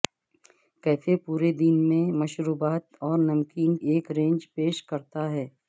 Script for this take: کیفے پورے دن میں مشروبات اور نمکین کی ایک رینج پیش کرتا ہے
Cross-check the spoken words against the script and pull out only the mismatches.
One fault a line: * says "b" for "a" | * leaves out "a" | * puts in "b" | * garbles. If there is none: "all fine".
* leaves out "کی"